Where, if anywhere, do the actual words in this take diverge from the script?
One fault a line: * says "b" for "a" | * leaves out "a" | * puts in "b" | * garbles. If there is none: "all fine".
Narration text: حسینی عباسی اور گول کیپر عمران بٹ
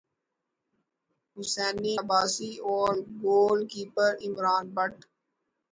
all fine